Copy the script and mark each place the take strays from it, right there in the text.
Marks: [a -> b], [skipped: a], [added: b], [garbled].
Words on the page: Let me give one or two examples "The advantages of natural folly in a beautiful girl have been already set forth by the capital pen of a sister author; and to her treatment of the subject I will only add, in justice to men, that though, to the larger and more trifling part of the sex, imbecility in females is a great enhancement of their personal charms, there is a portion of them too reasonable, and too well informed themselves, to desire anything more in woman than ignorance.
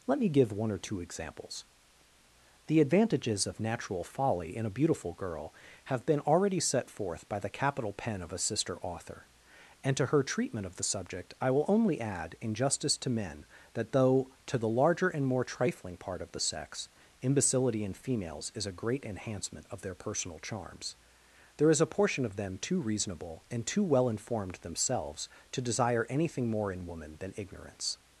Let me give one or two examples "The advantages of natural folly in a beautiful girl have been already set forth by the capital pen of a sister author; and to her treatment of the subject I will only add, in justice to men, that though, to the larger and more trifling part of the sex, imbecility in females is a great enhancement of their personal charms, there is a portion of them too reasonable, and too well informed themselves, to desire anything more in woman than ignorance.